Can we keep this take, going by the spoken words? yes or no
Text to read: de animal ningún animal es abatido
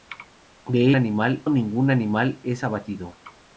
yes